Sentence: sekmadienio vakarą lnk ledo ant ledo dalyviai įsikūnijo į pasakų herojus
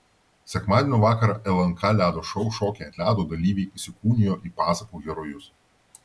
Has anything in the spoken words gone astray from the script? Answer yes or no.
yes